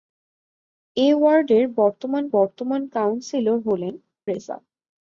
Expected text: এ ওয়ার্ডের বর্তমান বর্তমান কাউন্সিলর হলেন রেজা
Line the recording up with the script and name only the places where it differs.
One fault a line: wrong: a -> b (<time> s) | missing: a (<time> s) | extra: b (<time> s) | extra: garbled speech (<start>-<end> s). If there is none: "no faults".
no faults